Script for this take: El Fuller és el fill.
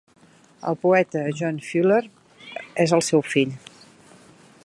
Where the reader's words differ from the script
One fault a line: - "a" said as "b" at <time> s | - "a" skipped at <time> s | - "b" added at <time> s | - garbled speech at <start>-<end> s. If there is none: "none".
- "poeta John" added at 0.8 s
- "seu" added at 3.1 s